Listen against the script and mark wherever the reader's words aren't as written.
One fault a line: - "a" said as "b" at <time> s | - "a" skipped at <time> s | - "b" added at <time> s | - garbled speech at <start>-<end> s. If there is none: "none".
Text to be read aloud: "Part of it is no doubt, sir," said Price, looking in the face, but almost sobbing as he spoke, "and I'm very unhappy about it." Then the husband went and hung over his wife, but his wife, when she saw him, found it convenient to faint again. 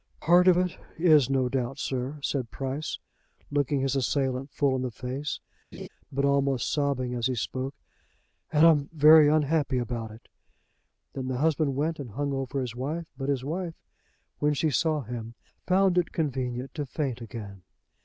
- "his assailant full" added at 3.8 s